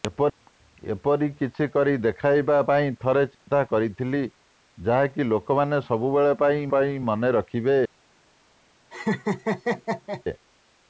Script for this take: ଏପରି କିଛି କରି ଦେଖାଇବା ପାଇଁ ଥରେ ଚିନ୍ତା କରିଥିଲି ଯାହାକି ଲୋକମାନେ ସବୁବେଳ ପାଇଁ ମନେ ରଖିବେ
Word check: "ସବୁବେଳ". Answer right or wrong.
right